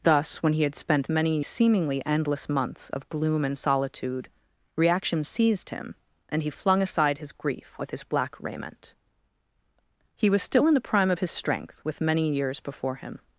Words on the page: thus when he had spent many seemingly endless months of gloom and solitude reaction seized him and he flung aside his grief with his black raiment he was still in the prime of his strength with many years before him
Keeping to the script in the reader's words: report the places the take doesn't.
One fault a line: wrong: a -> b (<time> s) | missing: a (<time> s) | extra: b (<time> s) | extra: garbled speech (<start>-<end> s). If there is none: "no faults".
no faults